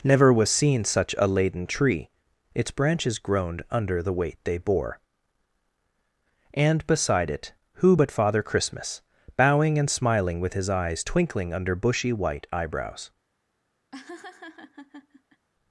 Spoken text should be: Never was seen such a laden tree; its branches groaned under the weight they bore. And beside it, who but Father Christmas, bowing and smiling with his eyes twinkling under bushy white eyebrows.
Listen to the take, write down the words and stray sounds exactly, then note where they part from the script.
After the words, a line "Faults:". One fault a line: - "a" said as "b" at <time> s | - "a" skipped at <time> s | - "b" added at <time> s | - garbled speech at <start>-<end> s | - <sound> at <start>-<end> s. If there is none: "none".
Never was seen such a laden tree; its branches groaned under the weight they bore. And beside it, who but Father Christmas, bowing and smiling with his eyes twinkling under bushy white eyebrows.
Faults:
- laugh at 13.9-15.5 s